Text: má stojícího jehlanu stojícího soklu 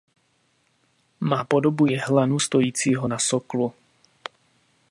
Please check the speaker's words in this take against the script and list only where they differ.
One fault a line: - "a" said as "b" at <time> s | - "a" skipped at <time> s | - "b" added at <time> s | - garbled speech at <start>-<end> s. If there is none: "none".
- "stojícího" said as "podobu" at 1.4 s
- "na" added at 3.1 s